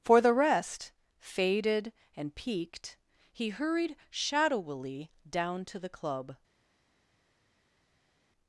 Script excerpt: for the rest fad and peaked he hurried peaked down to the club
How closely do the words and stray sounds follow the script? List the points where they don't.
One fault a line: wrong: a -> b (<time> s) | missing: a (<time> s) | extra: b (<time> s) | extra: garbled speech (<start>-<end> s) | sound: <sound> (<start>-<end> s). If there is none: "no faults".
wrong: fad -> faded (1.2 s)
wrong: peaked -> shadowily (4.1 s)